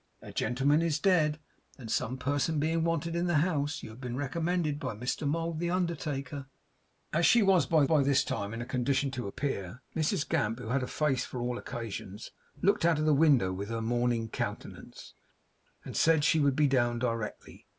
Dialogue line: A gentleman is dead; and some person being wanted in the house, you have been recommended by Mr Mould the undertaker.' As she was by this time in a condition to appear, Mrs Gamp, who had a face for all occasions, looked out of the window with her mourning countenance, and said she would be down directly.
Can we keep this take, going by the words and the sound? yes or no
no